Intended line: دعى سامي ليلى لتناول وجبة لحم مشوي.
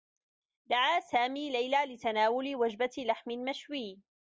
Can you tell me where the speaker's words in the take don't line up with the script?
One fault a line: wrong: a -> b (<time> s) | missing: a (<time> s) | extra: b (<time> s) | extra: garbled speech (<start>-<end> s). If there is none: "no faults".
no faults